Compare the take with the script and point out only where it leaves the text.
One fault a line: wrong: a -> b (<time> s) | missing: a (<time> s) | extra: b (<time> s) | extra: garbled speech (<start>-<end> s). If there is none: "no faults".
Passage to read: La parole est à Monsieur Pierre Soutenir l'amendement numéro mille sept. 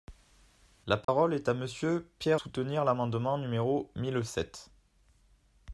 no faults